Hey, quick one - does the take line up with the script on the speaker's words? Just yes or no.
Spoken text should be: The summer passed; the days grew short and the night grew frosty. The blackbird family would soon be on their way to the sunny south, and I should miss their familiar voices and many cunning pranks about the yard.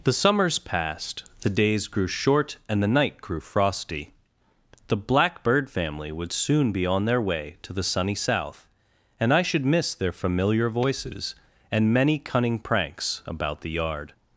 no